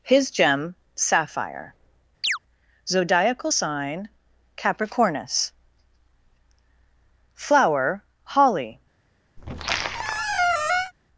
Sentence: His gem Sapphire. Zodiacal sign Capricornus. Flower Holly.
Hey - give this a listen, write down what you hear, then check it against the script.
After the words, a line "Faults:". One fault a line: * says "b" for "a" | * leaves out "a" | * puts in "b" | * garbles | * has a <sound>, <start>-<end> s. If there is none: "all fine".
His gem Sapphire. Zodiacal sign Capricornus. Flower Holly.
Faults:
* has a chirp, 2.2-2.4 s
* has a squeak, 9.4-10.9 s